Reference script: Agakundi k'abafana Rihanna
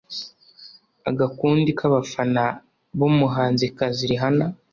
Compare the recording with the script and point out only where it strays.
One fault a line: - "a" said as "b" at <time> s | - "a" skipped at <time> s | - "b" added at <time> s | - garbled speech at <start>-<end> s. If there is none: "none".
- "b'umuhanzikazi" added at 3.0 s